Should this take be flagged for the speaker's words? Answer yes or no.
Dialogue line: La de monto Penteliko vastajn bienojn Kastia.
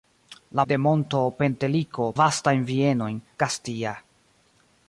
no